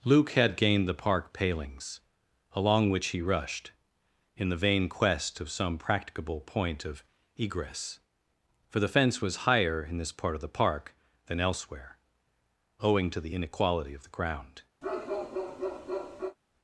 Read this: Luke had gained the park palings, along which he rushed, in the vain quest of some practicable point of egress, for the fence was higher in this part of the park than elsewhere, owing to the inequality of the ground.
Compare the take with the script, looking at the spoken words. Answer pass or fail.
pass